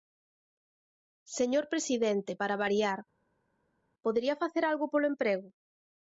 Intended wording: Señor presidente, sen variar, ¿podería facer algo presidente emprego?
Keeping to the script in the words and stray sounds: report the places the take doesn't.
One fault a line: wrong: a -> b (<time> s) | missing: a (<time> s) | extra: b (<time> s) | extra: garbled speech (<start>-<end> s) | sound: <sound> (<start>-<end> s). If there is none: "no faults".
wrong: sen -> para (2.4 s)
wrong: presidente -> polo (4.9 s)